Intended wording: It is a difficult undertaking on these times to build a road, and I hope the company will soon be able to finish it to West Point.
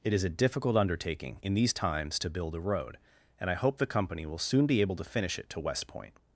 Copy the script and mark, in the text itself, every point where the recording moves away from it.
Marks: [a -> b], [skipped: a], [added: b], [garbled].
It is a difficult undertaking [on -> in] these times to build a road, and I hope the company will soon be able to finish it to West Point.